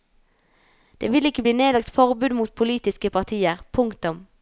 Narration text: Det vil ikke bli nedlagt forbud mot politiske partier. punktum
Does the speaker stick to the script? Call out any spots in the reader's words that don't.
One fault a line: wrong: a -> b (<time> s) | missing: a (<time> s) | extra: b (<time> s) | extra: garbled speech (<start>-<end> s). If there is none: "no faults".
no faults